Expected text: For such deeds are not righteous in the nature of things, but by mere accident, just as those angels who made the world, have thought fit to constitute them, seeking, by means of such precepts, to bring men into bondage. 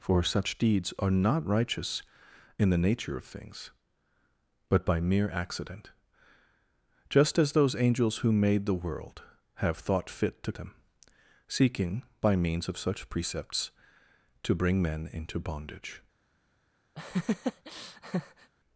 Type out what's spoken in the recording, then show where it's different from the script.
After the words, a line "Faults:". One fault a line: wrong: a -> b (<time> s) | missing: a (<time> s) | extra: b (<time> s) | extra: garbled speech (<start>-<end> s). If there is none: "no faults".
For such deeds are not righteous in the nature of things, but by mere accident, just as those angels who made the world, have thought fit to them, seeking, by means of such precepts, to bring men into bondage.
Faults:
missing: constitute (10.5 s)